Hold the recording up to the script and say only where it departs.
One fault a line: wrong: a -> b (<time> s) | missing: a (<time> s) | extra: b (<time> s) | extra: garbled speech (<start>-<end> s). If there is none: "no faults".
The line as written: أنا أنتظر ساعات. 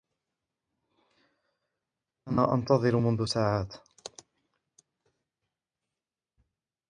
extra: منذ (3.0 s)